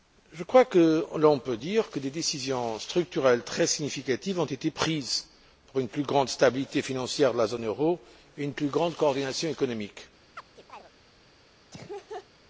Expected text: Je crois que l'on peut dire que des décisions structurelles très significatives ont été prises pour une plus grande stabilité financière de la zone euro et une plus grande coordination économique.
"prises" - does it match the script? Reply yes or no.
yes